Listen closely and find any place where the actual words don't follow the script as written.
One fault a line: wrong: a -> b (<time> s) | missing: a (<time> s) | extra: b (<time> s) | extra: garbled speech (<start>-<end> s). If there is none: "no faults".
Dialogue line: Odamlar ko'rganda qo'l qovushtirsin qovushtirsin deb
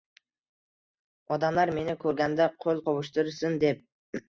extra: meni (1.8 s)
missing: qovushtirsin (3.6 s)